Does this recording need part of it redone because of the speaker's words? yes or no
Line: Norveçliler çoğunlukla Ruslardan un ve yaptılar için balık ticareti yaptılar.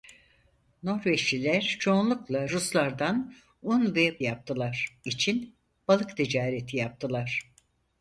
no